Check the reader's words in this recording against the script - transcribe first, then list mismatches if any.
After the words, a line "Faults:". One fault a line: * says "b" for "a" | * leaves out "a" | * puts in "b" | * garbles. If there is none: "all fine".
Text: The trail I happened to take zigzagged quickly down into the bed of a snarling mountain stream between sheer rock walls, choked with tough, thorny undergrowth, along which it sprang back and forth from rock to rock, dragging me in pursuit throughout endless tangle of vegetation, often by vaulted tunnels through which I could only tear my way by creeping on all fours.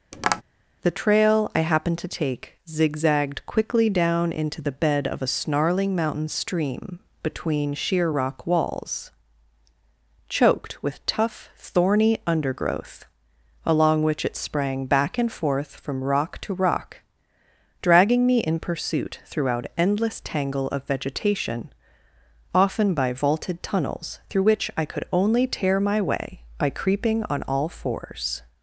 The trail I happened to take zigzagged quickly down into the bed of a snarling mountain stream between sheer rock walls, choked with tough, thorny undergrowth, along which it sprang back and forth from rock to rock, dragging me in pursuit throughout endless tangle of vegetation, often by vaulted tunnels through which I could only tear my way by creeping on all fours.
Faults:
all fine